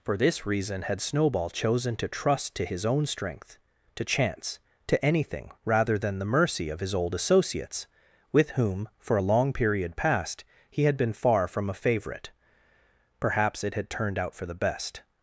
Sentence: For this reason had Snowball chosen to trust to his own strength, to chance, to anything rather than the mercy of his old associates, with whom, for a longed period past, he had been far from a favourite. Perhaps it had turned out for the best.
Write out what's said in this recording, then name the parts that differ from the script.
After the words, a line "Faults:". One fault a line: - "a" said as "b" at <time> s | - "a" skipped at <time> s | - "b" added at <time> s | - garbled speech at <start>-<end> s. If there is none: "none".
For this reason had Snowball chosen to trust to his own strength, to chance, to anything rather than the mercy of his old associates, with whom, for a long period past, he had been far from a favourite. Perhaps it had turned out for the best.
Faults:
- "longed" said as "long" at 9.2 s